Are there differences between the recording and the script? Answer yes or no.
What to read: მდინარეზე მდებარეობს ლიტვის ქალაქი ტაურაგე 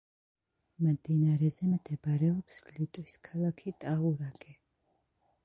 no